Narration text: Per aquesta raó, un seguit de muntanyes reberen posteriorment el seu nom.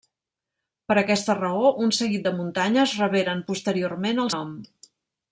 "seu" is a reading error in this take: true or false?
true